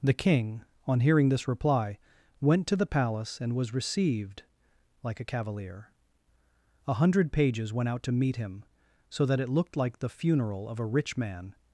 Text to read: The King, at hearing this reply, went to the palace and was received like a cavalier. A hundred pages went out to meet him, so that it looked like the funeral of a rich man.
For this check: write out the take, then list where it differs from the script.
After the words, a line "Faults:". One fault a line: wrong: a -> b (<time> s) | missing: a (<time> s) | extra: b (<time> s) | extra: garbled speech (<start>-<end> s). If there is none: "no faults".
The King, on hearing this reply, went to the palace and was received like a cavalier. A hundred pages went out to meet him, so that it looked like the funeral of a rich man.
Faults:
wrong: at -> on (0.9 s)